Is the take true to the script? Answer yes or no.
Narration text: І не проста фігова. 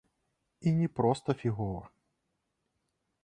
yes